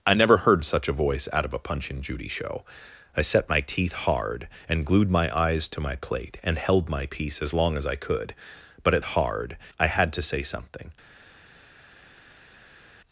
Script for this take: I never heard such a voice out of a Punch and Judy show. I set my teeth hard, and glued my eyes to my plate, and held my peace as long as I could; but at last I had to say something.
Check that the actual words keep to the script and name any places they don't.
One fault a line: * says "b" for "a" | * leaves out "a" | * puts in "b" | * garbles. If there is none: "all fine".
* says "hard" for "last"